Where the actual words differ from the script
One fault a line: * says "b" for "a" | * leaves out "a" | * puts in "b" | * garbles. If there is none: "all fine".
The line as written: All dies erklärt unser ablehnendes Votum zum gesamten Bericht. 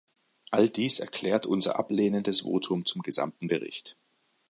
all fine